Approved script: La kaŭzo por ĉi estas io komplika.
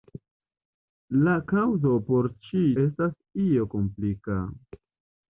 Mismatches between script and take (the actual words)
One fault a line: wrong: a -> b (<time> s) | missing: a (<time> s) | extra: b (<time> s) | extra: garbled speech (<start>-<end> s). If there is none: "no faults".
no faults